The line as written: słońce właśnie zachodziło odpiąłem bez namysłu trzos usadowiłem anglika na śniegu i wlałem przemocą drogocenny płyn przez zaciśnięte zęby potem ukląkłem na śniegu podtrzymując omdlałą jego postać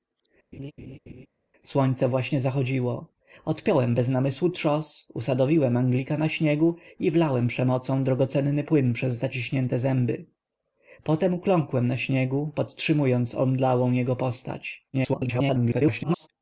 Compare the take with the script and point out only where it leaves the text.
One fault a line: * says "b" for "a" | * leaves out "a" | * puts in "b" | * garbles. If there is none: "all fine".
* garbles